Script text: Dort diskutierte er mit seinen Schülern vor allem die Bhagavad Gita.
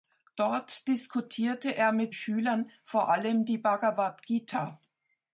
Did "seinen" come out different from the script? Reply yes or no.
yes